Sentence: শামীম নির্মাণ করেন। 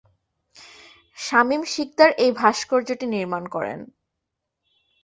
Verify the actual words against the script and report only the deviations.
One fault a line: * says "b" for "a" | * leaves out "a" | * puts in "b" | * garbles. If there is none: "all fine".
* puts in "শিকদার এই ভাস্কর্যটি"